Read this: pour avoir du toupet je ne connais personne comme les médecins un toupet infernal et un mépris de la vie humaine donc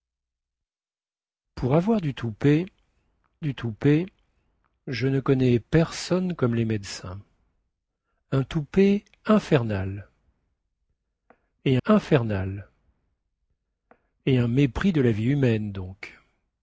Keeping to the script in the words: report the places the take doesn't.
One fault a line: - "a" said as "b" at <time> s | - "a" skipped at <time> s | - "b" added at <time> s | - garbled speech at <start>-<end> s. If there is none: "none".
- "du toupet" added at 3.4 s
- "infernal et" added at 11.8 s